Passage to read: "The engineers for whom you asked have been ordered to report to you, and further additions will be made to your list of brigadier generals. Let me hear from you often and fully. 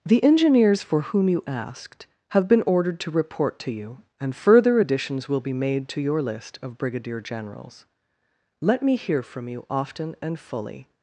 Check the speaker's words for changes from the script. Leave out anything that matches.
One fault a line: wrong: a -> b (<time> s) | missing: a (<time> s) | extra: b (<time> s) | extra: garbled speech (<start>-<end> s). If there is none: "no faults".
no faults